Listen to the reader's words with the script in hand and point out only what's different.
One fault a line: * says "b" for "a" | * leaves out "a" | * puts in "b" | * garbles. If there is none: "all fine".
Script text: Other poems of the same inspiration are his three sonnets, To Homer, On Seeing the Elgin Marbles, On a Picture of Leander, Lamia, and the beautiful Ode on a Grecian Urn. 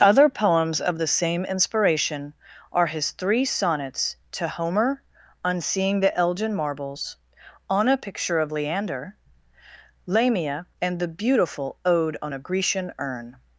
all fine